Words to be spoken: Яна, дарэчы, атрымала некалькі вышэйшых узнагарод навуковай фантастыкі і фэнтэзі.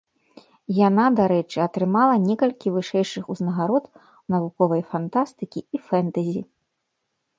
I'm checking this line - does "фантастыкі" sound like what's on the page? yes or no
yes